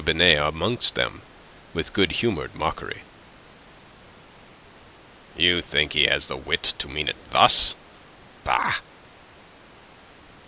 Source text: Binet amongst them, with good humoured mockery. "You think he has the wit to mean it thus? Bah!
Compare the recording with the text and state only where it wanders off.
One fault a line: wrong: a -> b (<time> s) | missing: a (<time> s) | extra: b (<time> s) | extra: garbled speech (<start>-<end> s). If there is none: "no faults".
no faults